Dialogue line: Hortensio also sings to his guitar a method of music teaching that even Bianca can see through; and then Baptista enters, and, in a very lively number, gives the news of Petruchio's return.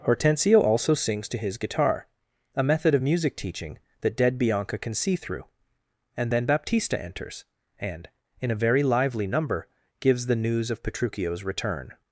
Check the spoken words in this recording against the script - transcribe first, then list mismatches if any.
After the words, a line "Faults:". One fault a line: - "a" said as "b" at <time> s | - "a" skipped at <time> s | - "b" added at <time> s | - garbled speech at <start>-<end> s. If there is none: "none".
Hortensio also sings to his guitar a method of music teaching that dead Bianca can see through; and then Baptista enters, and, in a very lively number, gives the news of Petruchio's return.
Faults:
- "even" said as "dead" at 4.2 s